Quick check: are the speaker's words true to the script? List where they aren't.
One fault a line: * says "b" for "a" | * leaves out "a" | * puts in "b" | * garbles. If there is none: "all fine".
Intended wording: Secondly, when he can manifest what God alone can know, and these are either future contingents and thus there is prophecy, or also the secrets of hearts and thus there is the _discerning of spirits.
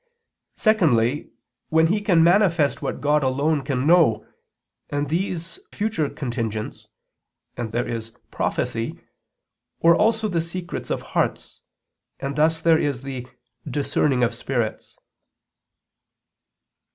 * leaves out "are either"
* leaves out "thus"